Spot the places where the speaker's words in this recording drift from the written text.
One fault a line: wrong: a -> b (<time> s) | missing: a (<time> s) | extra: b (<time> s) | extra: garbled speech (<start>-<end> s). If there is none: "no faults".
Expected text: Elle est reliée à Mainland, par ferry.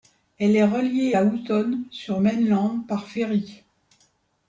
extra: Houton sur (1.2 s)